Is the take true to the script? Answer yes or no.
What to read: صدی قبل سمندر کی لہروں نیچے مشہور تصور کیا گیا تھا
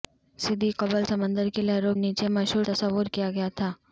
yes